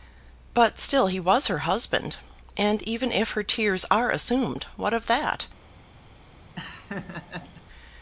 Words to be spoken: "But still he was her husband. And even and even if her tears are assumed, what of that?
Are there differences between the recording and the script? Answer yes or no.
yes